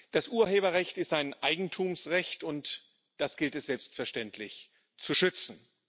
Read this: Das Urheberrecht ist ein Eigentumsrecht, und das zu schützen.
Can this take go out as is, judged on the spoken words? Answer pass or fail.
fail